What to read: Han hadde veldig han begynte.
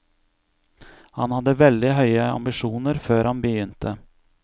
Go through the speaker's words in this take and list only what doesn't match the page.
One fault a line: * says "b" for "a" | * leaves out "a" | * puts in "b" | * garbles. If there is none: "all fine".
* puts in "høye ambisjoner før"